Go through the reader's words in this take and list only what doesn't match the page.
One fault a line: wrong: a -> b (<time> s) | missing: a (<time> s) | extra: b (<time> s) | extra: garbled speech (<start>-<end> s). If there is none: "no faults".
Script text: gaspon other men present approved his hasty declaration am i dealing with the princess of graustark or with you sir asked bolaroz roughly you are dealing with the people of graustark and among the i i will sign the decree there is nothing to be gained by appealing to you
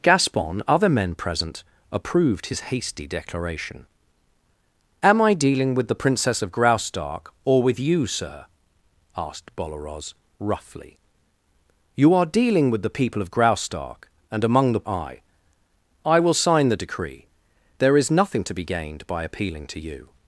no faults